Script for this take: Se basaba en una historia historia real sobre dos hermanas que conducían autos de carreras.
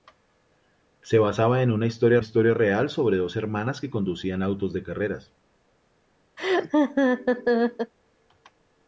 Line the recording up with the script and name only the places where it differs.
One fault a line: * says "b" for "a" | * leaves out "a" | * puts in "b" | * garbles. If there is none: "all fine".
all fine